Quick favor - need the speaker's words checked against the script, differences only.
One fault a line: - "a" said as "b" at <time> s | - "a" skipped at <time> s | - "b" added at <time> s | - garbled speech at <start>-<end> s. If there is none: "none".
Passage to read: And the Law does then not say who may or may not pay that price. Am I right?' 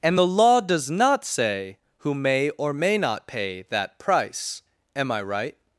- "then" skipped at 0.9 s